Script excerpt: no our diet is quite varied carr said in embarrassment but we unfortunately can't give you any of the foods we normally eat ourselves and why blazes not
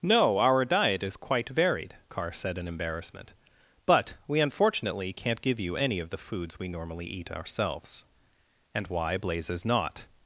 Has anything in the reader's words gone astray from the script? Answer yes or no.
no